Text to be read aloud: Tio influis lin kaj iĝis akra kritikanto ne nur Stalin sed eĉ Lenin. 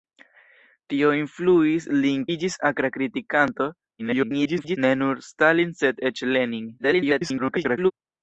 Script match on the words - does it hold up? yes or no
no